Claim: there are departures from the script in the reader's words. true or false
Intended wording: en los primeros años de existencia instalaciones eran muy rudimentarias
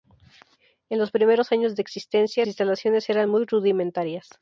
false